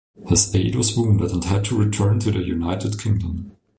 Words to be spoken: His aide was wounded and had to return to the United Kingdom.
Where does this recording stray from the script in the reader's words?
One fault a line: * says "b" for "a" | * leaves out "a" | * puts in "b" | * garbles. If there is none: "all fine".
all fine